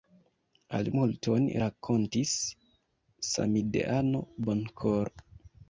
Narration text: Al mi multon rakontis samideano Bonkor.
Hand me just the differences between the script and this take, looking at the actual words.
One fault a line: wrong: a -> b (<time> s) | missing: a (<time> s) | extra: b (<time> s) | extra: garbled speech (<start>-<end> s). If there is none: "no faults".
missing: mi (0.9 s)